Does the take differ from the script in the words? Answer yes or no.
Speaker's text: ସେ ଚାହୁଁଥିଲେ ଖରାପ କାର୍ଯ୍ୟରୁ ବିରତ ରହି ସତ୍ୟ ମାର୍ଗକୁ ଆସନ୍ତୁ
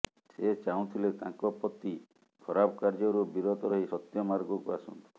yes